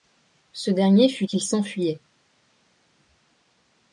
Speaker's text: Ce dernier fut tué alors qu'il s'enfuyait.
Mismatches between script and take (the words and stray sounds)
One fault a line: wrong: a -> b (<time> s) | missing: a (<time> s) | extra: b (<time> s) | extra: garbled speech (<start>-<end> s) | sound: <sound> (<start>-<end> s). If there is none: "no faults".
missing: tué alors (1.3 s)